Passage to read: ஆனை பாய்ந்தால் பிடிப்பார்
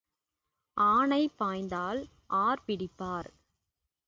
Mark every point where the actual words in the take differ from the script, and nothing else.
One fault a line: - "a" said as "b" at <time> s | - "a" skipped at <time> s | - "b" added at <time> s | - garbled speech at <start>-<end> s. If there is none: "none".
- "ஆர்" added at 2.4 s